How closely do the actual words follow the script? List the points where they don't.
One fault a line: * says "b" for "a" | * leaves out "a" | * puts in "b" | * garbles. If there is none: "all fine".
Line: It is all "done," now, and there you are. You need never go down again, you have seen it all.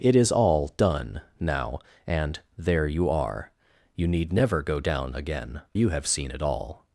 all fine